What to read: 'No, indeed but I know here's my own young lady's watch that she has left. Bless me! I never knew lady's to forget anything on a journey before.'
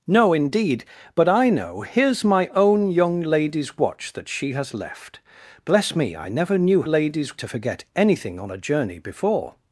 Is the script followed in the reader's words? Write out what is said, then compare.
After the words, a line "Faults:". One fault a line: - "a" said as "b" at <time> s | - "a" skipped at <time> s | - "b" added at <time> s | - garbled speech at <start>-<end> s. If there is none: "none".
'No, indeed but I know here's my own young lady's watch that she has left. Bless me! I never knew lady's to forget anything on a journey before.'
Faults:
none